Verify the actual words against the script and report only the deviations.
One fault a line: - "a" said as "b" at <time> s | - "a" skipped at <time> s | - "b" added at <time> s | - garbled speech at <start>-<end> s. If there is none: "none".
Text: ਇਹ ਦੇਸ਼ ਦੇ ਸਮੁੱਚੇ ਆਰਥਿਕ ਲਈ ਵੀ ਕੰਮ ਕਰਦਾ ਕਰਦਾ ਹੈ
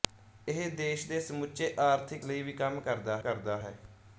none